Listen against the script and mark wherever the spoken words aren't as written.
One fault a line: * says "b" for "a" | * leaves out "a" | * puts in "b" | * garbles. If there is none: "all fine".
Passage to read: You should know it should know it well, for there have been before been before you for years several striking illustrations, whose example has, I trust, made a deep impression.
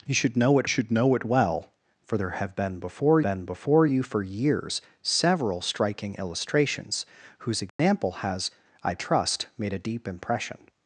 all fine